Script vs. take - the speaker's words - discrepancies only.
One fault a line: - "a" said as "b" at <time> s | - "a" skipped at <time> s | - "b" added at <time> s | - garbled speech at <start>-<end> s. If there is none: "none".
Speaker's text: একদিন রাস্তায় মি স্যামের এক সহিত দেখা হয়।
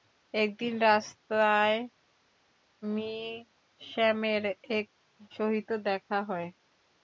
none